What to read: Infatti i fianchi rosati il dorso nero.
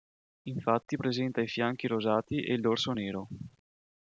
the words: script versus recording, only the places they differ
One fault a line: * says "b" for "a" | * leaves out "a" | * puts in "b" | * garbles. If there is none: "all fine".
* puts in "presenta"
* puts in "e"